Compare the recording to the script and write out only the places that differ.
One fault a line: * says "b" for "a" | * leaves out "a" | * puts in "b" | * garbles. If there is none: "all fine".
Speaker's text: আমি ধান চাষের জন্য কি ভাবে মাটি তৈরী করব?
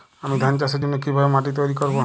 all fine